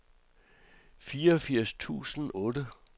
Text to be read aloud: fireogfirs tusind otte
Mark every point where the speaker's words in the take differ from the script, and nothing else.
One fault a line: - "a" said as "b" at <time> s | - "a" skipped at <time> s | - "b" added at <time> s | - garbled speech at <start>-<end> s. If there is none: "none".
none